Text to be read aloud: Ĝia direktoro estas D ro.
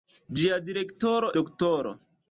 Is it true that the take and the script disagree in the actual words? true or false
true